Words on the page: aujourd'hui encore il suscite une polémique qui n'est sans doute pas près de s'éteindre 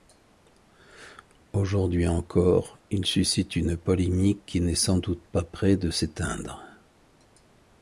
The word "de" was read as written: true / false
true